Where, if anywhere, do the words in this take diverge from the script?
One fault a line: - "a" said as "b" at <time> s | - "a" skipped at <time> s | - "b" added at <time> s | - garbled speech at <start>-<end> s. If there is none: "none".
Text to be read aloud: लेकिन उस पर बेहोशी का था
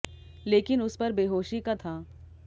none